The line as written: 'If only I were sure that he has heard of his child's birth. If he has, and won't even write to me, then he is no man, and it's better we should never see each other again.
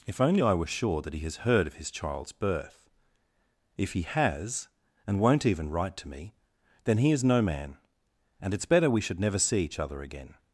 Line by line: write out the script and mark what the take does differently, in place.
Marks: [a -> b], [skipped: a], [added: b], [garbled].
'If only I were sure that he has heard of his child's birth. If he has, and won't even write to me, then he is no man, and it's better we should never see each other again.